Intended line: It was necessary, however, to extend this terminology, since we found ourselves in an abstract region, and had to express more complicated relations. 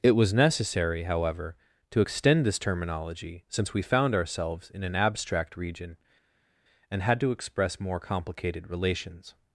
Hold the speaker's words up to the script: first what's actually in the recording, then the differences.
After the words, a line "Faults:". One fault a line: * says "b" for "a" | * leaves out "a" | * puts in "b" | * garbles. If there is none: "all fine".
It was necessary, however, to extend this terminology, since we found ourselves in an abstract region, and had to express more complicated relations.
Faults:
all fine